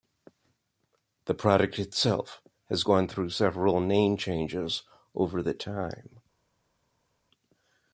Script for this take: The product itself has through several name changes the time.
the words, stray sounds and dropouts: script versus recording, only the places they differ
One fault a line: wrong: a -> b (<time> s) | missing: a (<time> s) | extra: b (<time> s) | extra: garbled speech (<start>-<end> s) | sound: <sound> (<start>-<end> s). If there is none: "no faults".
extra: gone (2.8 s)
extra: over (5.1 s)